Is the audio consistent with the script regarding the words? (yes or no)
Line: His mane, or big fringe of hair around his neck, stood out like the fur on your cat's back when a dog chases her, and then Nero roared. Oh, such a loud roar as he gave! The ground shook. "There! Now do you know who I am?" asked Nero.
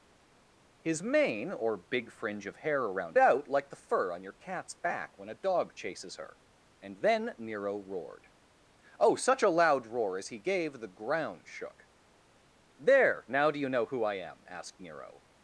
no